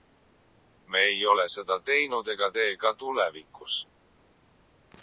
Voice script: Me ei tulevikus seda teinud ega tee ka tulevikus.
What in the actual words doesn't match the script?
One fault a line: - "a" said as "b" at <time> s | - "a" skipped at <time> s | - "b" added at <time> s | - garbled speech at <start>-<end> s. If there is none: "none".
- "tulevikus" said as "ole" at 1.3 s